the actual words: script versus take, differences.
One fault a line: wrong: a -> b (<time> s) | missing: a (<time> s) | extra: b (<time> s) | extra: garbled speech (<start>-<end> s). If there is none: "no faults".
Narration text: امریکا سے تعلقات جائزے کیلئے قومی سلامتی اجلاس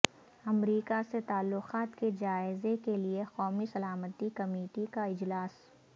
extra: کے (2.0 s)
extra: کمیٹی کا (4.3 s)